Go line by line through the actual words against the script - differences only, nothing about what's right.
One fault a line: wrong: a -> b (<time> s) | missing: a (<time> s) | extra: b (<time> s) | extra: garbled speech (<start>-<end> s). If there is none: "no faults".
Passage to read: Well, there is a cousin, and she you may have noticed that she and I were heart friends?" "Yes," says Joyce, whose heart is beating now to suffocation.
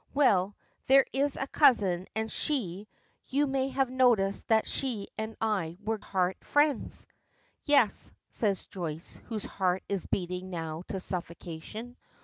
no faults